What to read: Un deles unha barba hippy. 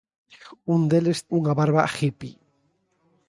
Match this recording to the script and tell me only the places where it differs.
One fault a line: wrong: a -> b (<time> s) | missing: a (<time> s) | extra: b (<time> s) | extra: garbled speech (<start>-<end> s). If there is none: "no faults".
no faults